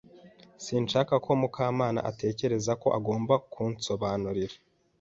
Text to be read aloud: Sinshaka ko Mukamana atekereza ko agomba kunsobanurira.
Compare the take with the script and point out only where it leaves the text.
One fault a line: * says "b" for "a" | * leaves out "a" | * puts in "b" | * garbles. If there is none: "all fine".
all fine